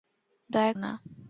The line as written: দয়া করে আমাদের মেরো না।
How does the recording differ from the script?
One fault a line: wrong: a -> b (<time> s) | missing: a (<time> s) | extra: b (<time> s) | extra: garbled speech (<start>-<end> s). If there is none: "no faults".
missing: করে আমাদের মেরো (0.7 s)